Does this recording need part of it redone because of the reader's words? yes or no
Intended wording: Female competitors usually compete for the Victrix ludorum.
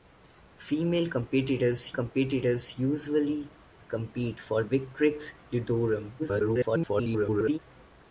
yes